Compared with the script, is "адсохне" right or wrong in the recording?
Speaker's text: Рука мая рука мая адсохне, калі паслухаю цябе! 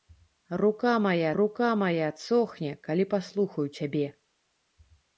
right